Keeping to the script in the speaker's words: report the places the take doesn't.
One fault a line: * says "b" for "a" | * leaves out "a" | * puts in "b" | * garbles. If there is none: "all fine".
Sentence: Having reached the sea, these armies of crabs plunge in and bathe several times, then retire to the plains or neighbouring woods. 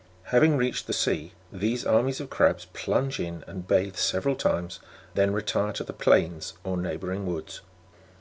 all fine